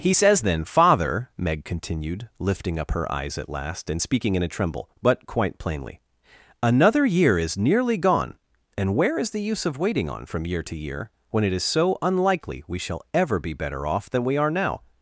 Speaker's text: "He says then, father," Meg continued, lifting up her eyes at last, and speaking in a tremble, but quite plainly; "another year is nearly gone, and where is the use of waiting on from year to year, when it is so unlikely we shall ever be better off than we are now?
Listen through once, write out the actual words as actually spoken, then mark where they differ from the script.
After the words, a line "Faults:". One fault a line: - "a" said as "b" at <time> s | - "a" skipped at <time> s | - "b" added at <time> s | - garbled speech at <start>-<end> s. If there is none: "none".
"He says then, father," Meg continued, lifting up her eyes at last, and speaking in a tremble, but quite plainly; "another year is nearly gone, and where is the use of waiting on from year to year, when it is so unlikely we shall ever be better off than we are now?
Faults:
none